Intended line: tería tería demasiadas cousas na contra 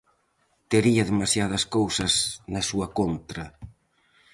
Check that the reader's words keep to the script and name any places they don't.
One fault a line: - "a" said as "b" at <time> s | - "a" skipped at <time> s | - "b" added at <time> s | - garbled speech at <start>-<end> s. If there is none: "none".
- "tería" skipped at 1.0 s
- "súa" added at 2.7 s